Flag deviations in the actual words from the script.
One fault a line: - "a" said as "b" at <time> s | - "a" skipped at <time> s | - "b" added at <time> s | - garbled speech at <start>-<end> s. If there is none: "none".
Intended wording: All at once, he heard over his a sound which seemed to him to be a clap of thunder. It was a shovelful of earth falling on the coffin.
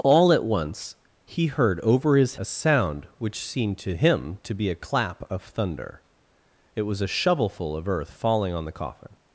none